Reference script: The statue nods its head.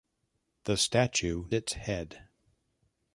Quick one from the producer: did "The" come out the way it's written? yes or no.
yes